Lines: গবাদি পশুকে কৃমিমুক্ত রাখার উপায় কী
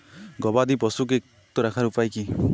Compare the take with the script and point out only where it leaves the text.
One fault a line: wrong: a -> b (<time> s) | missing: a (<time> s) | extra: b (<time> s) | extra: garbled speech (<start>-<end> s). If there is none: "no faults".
missing: কৃমিমুক্ত (1.2 s)